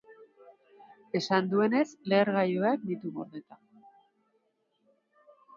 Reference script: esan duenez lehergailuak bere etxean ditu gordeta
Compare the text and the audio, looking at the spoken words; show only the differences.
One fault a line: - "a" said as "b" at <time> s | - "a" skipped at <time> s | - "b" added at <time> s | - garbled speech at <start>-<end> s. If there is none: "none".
- "bere etxean" skipped at 2.9 s